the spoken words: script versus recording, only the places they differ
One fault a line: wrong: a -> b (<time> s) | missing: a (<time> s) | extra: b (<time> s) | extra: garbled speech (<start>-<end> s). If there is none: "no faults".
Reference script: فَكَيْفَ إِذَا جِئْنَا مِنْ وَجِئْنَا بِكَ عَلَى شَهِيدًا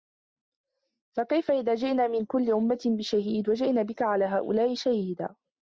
extra: كُلِّ أُمَّةٍ بِشَهِيدٍ (2.2 s)
extra: هَؤُلَاءِ (4.2 s)